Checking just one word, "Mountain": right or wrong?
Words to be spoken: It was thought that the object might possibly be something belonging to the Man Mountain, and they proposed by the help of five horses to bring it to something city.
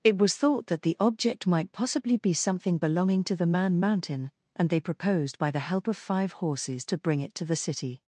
right